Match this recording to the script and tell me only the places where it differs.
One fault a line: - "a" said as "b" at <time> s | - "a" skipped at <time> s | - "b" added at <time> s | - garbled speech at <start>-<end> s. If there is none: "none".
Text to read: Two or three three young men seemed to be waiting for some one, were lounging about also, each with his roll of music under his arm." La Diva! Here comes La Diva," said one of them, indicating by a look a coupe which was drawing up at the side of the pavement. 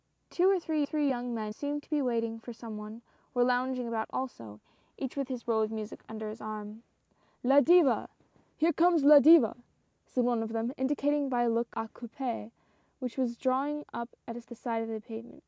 none